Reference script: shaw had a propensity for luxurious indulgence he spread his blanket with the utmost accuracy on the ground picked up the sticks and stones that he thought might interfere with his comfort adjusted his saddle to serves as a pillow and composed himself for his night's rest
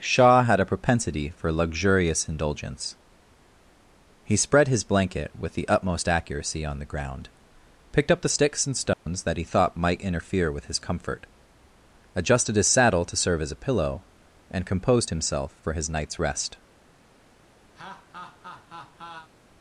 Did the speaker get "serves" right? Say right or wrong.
wrong